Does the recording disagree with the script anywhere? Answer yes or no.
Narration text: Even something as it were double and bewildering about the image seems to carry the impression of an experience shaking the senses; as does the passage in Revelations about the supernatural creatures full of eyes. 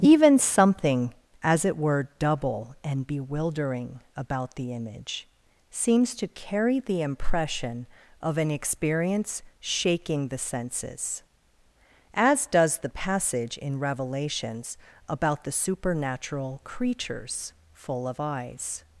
no